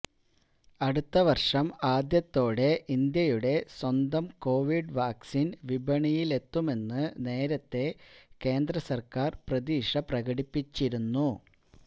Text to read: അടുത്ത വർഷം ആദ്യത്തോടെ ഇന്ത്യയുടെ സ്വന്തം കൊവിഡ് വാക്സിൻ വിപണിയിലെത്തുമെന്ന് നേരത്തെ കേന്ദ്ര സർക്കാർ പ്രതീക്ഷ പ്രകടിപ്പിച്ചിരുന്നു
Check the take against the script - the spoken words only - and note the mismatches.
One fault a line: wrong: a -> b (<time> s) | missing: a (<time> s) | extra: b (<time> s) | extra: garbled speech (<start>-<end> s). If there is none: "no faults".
no faults